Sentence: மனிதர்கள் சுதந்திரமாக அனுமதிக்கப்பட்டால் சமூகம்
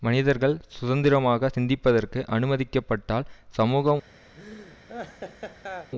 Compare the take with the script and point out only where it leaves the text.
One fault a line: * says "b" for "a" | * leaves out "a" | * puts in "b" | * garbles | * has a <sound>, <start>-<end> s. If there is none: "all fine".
* puts in "சிந்திப்பதற்கு"
* has a laugh, 4.4-5.9 s